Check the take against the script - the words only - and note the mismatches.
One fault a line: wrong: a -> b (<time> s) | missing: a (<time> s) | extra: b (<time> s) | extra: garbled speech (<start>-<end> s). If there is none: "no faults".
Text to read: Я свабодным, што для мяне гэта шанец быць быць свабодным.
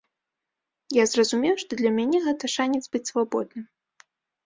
wrong: свабодным -> зразумеў (1.1 s)
missing: быць (3.1 s)